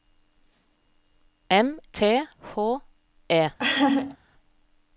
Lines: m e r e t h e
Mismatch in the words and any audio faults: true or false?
true